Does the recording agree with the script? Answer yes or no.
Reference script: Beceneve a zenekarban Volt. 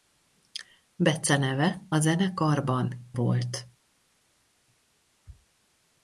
yes